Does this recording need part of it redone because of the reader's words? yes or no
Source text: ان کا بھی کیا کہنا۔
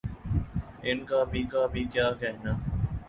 yes